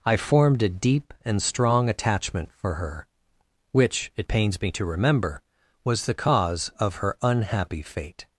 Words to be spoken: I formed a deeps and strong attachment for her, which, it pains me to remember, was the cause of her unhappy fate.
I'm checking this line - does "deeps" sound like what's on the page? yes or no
no